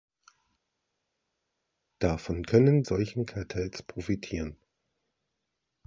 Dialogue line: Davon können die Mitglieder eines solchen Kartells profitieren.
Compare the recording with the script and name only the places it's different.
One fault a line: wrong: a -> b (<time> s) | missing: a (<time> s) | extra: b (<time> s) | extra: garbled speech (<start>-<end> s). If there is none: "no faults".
missing: die Mitglieder eines (2.8 s)